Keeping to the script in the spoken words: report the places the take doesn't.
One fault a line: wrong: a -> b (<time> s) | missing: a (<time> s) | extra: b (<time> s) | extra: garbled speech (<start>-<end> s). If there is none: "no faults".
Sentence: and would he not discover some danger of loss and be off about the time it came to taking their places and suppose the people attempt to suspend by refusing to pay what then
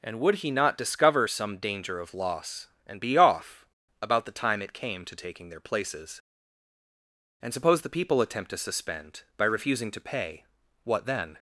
no faults